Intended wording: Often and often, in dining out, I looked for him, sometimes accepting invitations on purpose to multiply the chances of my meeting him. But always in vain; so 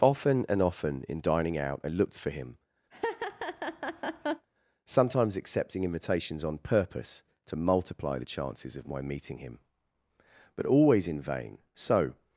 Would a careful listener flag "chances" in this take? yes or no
no